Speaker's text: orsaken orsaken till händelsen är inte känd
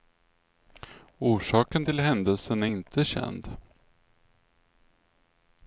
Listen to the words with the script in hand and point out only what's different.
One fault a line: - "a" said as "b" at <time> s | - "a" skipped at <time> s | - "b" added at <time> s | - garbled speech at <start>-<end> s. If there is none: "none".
- "orsaken" skipped at 1.9 s